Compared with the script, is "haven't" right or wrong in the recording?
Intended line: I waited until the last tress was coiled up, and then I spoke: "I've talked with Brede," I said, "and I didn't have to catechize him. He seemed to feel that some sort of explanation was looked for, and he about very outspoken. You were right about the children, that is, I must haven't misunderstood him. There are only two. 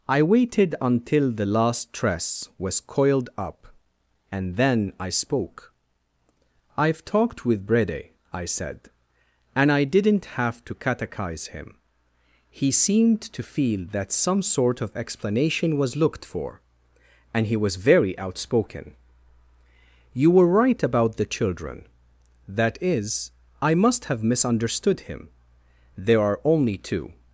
wrong